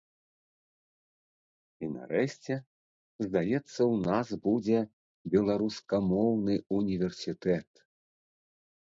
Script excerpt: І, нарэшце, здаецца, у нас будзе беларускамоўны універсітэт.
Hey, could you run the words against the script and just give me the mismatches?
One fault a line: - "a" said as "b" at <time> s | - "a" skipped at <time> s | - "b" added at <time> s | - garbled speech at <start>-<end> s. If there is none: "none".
none